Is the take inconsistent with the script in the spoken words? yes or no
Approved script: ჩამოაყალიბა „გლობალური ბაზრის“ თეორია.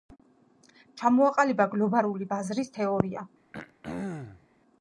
no